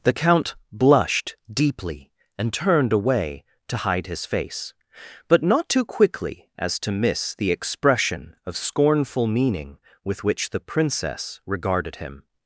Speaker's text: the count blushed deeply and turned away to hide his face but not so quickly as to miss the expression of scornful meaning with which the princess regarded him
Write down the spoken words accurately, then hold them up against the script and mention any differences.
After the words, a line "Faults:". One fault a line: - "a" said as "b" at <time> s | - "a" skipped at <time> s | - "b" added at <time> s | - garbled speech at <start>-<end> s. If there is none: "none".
the count blushed deeply and turned away to hide his face but not too quickly as to miss the expression of scornful meaning with which the princess regarded him
Faults:
- "so" said as "too" at 5.7 s